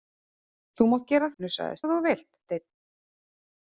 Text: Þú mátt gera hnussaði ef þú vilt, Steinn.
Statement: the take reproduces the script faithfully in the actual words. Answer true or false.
true